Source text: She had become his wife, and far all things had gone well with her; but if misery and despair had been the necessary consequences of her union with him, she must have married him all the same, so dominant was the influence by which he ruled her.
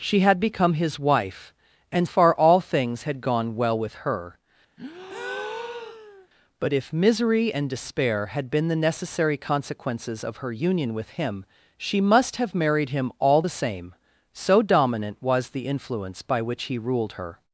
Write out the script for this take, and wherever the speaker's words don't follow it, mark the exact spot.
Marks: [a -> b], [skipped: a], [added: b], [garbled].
She had become his wife, and far all things had gone well with her; but if misery and despair had been the necessary consequences of her union with him, she must have married him all the same, so dominant was the influence by which he ruled her.